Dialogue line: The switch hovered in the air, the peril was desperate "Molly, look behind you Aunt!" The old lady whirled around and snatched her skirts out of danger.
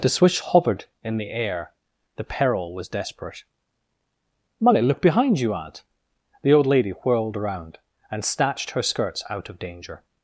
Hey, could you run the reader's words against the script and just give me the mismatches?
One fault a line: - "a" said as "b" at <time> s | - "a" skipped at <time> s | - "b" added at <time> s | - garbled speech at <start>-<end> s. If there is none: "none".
none